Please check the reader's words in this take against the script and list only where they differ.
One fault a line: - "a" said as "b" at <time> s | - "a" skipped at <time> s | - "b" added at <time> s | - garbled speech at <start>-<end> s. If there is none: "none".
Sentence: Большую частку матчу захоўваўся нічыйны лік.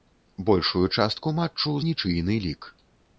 - "захоўваўся" skipped at 1.8 s